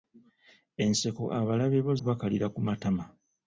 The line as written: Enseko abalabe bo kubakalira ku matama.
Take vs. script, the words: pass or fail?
pass